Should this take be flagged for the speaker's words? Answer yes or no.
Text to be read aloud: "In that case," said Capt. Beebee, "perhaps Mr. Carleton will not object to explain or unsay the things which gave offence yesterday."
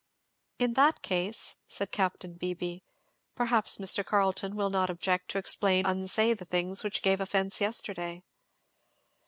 yes